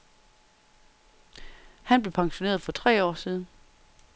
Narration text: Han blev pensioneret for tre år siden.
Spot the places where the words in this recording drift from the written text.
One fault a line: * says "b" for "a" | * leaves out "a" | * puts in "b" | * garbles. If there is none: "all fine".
all fine